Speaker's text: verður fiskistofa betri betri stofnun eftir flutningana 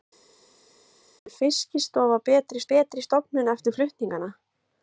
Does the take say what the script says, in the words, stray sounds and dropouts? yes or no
yes